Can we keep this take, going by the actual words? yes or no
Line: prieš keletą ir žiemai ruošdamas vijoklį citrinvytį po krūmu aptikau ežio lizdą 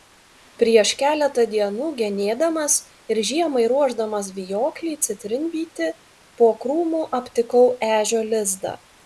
no